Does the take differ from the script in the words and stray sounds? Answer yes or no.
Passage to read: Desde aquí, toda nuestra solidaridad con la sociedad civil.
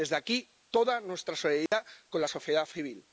yes